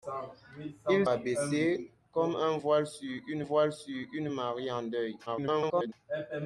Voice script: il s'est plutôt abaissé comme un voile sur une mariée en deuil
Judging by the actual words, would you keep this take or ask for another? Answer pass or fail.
fail